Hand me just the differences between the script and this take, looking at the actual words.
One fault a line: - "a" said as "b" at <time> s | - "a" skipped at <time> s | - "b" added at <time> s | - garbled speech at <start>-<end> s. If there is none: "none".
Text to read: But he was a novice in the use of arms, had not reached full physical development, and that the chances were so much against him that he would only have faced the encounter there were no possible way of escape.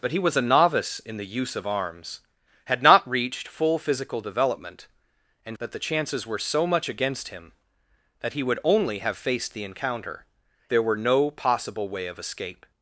none